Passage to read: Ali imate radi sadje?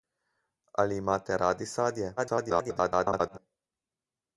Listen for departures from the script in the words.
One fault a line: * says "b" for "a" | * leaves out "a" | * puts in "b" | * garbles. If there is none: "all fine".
* garbles